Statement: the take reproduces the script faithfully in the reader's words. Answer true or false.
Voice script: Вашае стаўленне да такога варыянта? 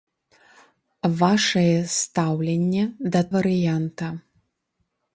false